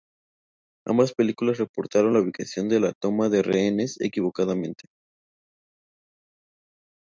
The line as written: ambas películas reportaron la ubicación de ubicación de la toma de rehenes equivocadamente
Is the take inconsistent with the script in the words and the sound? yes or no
yes